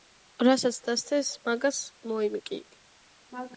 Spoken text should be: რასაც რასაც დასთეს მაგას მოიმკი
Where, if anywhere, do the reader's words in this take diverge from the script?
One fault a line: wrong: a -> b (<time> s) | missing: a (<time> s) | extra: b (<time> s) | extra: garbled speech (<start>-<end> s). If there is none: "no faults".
missing: რასაც (0.8 s)